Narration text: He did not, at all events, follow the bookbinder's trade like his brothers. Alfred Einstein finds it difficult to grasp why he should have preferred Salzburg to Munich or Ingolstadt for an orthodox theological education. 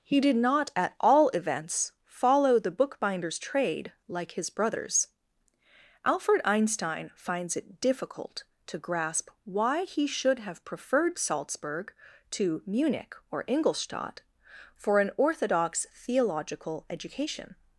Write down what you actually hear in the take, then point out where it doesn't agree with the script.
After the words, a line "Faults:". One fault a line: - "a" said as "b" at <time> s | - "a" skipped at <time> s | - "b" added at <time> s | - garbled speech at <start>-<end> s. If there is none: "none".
He did not, at all events, follow the bookbinder's trade like his brothers. Alfred Einstein finds it difficult to grasp why he should have preferred Salzburg to Munich or Ingolstadt for an orthodox theological education.
Faults:
none